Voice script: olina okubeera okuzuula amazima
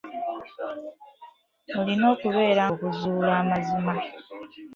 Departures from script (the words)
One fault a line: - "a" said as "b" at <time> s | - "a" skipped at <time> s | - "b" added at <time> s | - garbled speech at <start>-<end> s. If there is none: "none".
none